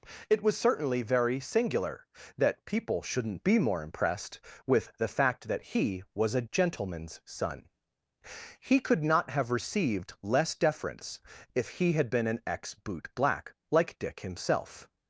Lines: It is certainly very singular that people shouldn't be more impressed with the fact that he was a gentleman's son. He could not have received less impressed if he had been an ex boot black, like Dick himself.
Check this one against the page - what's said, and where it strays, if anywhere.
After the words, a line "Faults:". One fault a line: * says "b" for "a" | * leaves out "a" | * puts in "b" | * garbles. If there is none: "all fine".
It was certainly very singular that people shouldn't be more impressed with the fact that he was a gentleman's son. He could not have received less deference if he had been an ex boot black, like Dick himself.
Faults:
* says "was" for "is"
* says "deference" for "impressed"